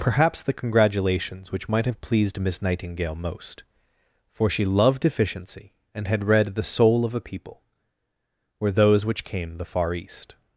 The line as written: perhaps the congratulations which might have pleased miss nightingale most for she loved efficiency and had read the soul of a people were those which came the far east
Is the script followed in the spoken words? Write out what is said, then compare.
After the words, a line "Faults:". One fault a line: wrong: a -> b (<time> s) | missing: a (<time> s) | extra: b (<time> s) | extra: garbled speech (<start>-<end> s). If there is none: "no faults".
perhaps the congratulations which might have pleased miss nightingale most for she loved efficiency and had read the soul of a people were those which came the far east
Faults:
no faults